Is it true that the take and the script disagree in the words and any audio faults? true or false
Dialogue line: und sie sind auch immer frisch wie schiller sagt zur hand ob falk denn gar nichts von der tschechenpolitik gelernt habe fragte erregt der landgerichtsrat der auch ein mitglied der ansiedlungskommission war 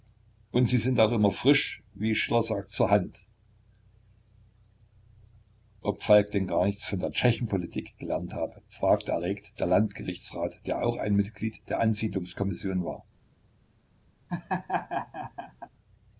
true